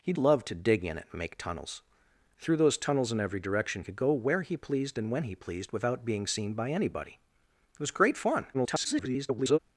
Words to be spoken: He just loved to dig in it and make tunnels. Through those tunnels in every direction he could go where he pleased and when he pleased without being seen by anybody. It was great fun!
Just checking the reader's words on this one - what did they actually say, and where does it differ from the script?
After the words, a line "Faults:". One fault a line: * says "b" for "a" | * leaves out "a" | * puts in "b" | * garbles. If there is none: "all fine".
He loved to dig in it and make tunnels. Through those tunnels in every direction could go where he pleased and when he pleased without being seen by anybody. It was great fun! [garbled]
Faults:
* leaves out "just"
* leaves out "he"
* garbles